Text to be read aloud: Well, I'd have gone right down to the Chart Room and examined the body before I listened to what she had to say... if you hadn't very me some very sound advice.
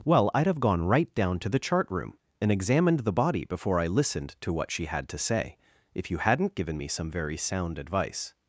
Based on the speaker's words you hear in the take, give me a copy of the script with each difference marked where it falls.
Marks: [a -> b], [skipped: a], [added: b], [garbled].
Well, I'd have gone right down to the Chart Room and examined the body before I listened to what she had to say... if you hadn't [very -> given] me some very sound advice.